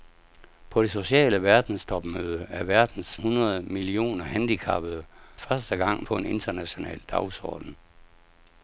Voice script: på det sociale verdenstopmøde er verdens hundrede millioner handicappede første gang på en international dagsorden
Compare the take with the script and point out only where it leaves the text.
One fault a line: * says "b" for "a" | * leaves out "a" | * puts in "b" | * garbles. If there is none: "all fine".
all fine